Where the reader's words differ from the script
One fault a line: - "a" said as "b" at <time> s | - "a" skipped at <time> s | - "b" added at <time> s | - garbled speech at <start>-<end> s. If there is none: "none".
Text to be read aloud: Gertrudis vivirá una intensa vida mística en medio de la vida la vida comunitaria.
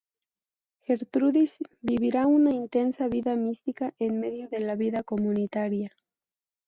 - "la vida" skipped at 5.0 s